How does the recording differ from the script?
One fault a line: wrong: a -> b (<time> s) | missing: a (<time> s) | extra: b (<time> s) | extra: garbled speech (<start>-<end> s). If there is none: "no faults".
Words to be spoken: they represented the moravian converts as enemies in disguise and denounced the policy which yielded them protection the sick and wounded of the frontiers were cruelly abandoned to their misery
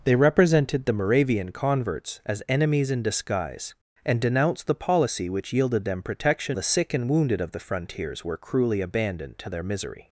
no faults